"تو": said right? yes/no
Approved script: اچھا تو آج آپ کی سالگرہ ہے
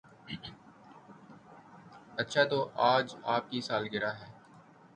yes